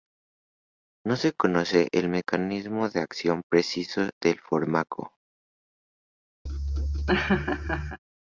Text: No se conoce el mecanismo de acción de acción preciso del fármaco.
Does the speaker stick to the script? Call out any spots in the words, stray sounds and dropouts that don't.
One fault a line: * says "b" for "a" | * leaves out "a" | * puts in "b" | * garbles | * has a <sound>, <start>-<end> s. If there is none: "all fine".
* leaves out "de acción"
* has a laugh, 6.5-8.0 s